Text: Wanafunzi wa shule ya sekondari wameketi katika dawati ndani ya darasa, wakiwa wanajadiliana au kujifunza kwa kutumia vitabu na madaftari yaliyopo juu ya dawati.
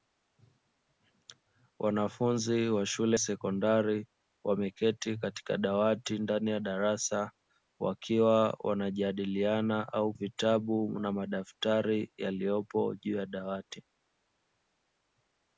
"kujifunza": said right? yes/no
no